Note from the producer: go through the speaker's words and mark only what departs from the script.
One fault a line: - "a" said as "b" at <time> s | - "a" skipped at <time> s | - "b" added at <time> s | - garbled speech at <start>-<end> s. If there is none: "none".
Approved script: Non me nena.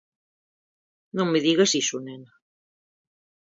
- "digas iso" added at 1.5 s